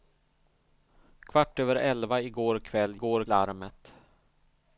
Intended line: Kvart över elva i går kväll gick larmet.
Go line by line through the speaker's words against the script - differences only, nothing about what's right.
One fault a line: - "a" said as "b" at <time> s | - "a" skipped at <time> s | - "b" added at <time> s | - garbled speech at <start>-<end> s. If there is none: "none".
- "gick" said as "går" at 2.9 s